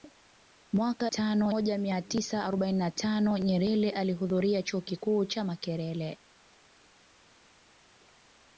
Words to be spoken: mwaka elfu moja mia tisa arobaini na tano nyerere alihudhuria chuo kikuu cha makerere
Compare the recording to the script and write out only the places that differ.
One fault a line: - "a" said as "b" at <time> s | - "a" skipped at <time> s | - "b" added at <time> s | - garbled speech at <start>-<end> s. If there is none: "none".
- "elfu" said as "tano" at 1.1 s